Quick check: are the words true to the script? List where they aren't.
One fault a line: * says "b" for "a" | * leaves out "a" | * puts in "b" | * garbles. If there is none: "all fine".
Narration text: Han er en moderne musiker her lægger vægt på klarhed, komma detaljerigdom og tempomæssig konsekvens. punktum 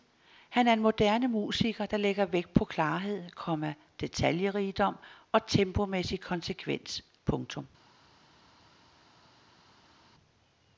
* says "der" for "her"